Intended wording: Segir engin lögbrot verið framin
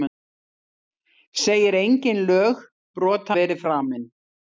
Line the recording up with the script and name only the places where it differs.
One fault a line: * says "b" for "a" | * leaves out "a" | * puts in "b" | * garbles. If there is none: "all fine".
all fine